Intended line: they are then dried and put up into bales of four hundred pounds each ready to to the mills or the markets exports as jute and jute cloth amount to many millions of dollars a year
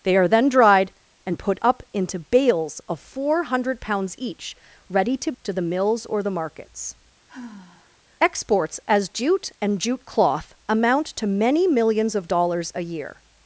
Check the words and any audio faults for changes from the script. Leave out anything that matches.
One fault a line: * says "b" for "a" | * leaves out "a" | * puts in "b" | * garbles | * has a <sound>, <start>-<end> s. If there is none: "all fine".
* has a sigh, 7.3-8.0 s